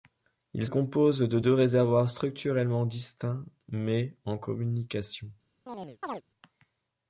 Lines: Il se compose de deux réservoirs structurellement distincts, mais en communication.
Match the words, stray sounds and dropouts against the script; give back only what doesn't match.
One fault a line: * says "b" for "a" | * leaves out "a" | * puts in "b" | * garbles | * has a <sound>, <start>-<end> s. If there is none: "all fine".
* leaves out "se"
* has a chirp, 5.7-6.2 s